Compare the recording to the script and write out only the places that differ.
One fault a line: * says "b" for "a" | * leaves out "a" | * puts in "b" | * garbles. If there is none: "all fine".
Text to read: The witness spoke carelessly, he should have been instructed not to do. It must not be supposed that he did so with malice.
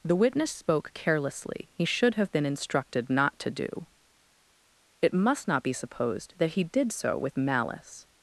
all fine